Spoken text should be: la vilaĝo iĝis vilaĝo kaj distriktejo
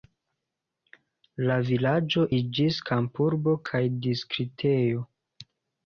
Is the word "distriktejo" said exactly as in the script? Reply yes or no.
yes